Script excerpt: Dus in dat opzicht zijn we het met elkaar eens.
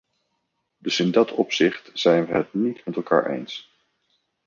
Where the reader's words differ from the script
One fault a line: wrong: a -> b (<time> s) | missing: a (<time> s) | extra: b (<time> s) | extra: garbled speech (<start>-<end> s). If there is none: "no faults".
extra: niet (2.5 s)